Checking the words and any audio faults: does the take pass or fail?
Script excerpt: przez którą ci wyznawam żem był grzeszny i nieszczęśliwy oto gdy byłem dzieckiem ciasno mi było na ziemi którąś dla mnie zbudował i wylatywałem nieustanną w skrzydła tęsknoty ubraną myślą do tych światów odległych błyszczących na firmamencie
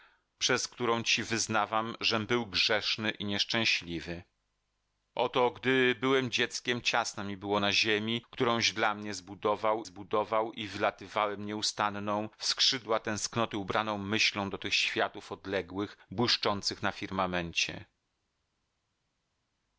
fail